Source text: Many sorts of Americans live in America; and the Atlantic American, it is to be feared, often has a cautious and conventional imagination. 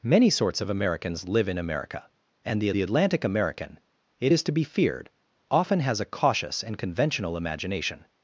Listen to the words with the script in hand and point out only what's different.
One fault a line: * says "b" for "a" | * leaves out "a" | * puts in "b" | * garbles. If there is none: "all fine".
* puts in "the"